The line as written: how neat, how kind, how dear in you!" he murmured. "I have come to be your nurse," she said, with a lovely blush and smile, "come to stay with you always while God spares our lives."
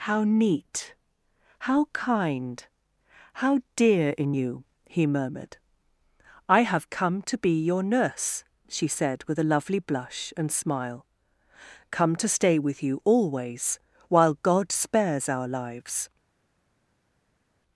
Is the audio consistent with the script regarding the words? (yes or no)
yes